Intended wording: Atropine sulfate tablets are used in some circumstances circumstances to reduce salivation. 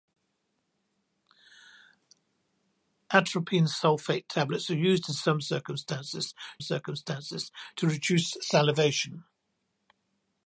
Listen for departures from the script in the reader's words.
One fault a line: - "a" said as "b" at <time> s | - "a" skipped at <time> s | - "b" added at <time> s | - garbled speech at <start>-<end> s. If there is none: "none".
none